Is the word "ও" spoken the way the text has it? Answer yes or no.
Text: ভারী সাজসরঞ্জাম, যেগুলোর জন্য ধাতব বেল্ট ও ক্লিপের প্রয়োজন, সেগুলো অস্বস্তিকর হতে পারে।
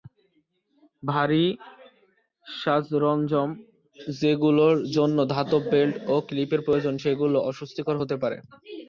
yes